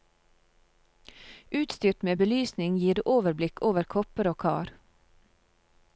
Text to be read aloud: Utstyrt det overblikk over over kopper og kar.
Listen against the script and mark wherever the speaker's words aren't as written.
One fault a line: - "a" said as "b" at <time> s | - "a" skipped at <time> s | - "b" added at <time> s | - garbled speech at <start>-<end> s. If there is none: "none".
- "med belysning gir" added at 2.1 s
- "over" skipped at 3.9 s